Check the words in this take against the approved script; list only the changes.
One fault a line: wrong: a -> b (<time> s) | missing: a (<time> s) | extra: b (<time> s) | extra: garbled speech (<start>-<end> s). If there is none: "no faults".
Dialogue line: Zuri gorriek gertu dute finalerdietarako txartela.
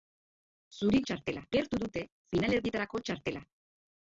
wrong: gorriek -> txartela (1.1 s)